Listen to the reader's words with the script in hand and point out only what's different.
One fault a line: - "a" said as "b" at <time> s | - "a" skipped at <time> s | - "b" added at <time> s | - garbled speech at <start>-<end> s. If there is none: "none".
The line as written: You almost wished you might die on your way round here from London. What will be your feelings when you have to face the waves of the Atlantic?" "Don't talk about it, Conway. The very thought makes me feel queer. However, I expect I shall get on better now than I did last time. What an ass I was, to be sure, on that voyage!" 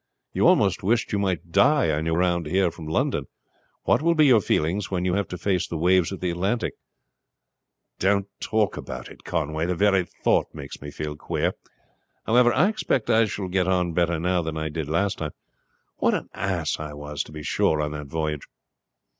- "way" skipped at 2.1 s